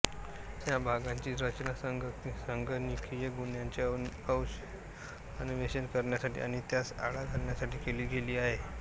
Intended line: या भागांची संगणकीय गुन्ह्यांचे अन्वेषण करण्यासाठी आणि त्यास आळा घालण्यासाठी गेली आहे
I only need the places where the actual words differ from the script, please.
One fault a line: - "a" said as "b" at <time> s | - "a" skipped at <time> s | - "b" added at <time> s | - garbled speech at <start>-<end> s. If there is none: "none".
- "रचना" added at 1.4 s
- "केली" added at 7.8 s